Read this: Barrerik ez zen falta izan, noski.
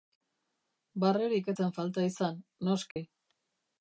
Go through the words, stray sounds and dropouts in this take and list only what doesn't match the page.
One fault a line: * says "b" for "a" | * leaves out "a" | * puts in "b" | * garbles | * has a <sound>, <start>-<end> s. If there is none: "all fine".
* has a dropout, 2.9-3.0 s